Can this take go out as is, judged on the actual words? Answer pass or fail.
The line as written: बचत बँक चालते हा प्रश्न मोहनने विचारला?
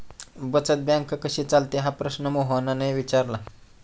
fail